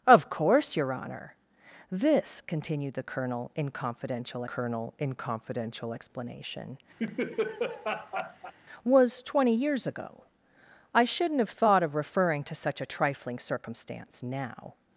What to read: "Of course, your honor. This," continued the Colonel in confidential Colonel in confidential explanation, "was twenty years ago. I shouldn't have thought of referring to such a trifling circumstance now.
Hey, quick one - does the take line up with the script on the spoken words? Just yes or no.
yes